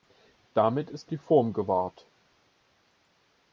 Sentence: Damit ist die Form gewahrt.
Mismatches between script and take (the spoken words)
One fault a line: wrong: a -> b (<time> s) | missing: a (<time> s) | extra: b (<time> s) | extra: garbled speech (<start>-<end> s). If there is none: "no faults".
no faults